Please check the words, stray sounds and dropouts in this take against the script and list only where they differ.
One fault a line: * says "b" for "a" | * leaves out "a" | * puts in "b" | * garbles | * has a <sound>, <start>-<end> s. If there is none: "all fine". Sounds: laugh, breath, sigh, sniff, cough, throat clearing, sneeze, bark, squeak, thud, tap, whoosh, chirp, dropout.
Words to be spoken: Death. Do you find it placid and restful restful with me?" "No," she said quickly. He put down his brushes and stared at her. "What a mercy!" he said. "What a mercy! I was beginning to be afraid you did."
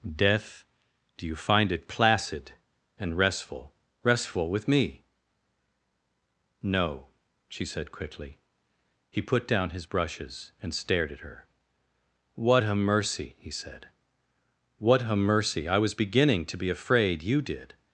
all fine